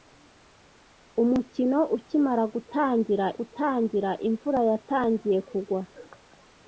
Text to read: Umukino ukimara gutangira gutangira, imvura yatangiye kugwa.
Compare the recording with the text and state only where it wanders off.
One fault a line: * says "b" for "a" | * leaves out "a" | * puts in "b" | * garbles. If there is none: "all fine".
all fine